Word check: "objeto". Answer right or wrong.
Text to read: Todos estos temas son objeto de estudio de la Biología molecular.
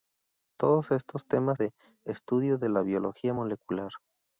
wrong